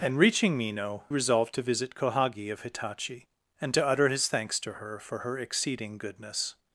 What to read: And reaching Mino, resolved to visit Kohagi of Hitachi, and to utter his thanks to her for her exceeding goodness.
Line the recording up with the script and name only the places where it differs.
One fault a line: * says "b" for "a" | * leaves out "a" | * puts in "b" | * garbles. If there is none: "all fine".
all fine